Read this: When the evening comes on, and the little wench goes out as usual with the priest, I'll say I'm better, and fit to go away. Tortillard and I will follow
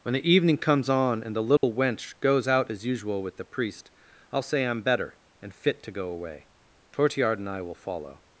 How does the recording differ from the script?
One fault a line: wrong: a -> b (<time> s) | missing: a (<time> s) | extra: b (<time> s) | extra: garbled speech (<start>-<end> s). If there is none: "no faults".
no faults